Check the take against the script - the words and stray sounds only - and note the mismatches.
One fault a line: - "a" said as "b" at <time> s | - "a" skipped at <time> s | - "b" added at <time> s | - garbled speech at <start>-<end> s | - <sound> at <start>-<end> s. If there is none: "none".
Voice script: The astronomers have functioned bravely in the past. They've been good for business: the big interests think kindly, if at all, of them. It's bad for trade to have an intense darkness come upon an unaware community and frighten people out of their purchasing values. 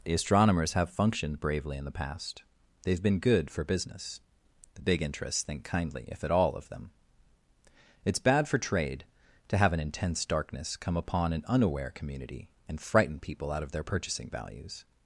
none